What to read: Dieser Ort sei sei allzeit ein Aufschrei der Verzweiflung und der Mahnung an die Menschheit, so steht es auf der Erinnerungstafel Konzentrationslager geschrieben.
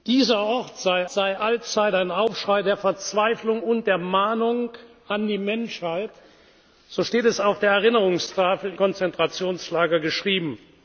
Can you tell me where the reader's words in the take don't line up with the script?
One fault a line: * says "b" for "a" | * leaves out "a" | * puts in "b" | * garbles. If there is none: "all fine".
all fine